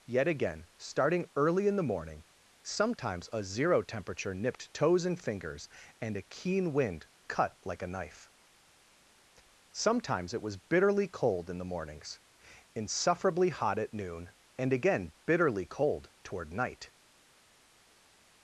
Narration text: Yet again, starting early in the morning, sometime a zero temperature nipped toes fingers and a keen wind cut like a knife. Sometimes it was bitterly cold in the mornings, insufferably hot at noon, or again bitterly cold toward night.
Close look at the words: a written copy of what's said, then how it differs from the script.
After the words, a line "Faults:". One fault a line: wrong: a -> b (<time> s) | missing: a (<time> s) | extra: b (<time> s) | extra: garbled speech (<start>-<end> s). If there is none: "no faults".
Yet again, starting early in the morning, sometimes a zero temperature nipped toes and fingers and a keen wind cut like a knife. Sometimes it was bitterly cold in the mornings, insufferably hot at noon, and again bitterly cold toward night.
Faults:
wrong: sometime -> sometimes (2.6 s)
extra: and (5.0 s)
wrong: or -> and (14.6 s)